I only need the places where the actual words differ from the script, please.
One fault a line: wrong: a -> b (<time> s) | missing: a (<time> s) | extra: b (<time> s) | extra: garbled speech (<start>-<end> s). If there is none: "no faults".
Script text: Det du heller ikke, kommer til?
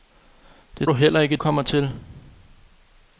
no faults